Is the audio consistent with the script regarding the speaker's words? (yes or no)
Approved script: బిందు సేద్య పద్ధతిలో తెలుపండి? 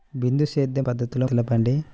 yes